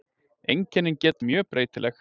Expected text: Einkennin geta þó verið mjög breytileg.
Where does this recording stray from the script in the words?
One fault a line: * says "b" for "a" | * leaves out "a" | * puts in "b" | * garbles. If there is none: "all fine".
* leaves out "þó verið"